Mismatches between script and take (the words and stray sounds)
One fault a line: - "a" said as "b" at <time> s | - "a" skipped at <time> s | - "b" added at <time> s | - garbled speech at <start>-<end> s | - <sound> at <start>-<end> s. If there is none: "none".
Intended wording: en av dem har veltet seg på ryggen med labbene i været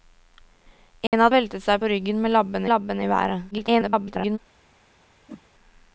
- dropout at 1.1-1.1 s
- "dem har" skipped at 1.3 s
- "labbene" added at 2.7 s
- garbled speech at 3.5-4.4 s
- whoosh at 5.3-5.4 s